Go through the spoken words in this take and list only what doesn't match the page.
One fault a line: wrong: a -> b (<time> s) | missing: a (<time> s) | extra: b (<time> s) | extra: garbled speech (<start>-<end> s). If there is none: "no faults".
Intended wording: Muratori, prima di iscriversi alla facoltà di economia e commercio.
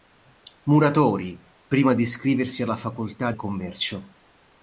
missing: di economia (3.3 s)